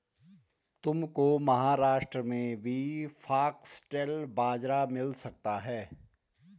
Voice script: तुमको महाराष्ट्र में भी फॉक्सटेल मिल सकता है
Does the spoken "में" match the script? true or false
true